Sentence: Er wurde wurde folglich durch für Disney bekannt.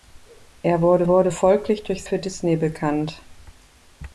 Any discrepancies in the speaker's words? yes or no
no